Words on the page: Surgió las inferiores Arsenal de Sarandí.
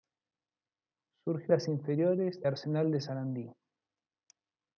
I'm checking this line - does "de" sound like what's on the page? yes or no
yes